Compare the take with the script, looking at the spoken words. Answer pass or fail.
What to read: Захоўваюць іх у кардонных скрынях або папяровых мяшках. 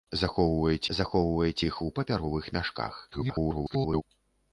fail